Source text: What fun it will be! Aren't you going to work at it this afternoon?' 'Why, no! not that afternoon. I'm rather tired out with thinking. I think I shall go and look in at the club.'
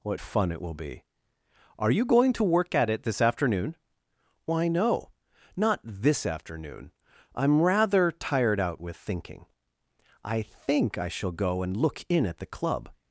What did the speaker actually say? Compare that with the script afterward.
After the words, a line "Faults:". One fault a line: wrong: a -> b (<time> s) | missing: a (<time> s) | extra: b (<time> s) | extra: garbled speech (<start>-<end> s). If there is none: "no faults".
What fun it will be! Are you going to work at it this afternoon?' 'Why, no! not this afternoon. I'm rather tired out with thinking. I think I shall go and look in at the club.'
Faults:
wrong: Aren't -> Are (1.8 s)
wrong: that -> this (5.8 s)